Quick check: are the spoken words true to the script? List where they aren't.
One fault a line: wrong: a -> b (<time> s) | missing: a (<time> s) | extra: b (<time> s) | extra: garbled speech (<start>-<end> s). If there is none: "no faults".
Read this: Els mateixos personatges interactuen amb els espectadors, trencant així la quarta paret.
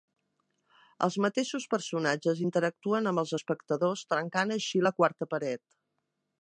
no faults